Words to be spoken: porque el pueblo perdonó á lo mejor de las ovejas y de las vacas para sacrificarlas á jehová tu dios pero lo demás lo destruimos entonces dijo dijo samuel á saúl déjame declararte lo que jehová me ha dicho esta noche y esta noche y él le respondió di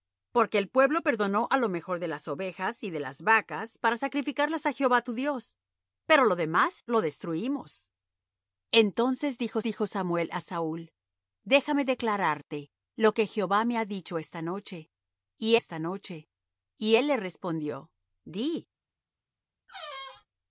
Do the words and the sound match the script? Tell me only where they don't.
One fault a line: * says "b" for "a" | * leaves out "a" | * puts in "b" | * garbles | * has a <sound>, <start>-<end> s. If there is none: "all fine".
* has a squeak, 19.7-20.3 s